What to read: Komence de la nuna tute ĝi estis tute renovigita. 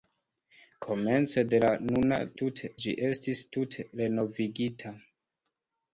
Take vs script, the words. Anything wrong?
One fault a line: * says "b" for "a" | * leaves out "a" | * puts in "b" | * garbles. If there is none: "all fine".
all fine